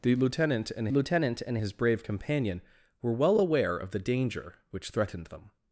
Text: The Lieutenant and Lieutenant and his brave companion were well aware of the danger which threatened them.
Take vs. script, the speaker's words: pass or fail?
pass